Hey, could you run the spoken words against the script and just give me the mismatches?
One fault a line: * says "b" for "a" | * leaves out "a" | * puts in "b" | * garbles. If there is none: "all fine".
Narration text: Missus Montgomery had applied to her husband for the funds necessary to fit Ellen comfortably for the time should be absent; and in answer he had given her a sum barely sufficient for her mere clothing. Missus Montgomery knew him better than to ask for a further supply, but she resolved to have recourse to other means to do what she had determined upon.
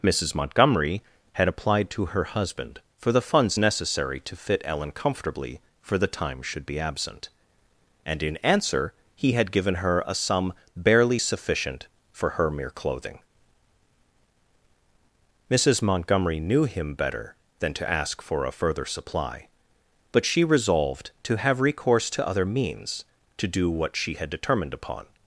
all fine